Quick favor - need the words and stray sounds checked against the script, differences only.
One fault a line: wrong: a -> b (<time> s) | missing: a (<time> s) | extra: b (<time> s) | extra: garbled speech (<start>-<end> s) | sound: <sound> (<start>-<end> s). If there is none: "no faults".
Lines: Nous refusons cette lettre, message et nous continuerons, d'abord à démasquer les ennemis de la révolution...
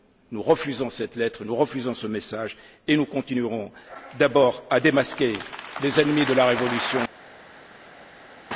extra: nous refusons ce (1.4 s)